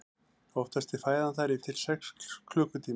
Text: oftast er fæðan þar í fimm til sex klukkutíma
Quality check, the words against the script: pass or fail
fail